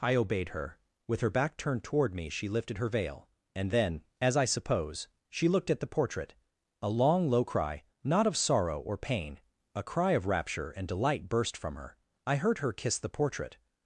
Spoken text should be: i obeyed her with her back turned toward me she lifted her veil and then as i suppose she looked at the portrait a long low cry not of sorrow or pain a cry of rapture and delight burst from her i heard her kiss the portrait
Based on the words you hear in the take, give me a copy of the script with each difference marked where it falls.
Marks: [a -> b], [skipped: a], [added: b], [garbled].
i obeyed her with her back turned toward me she lifted her veil and then as i suppose she looked at the portrait a long low cry not of sorrow or pain a cry of rapture and delight burst from her i heard her kiss the portrait